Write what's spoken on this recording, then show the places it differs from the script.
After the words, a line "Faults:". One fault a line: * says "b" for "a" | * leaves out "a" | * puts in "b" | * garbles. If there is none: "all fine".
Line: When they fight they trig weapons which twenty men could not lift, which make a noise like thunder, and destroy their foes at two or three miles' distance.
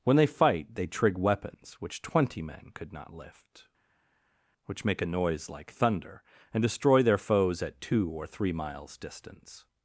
When they fight they trig weapons which twenty men could not lift, which make a noise like thunder, and destroy their foes at two or three miles' distance.
Faults:
all fine